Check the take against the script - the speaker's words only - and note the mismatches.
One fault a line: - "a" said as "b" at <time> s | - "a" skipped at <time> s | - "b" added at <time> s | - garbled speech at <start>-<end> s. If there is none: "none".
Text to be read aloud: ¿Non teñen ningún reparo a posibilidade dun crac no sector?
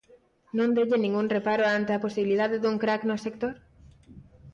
- "ante" added at 1.8 s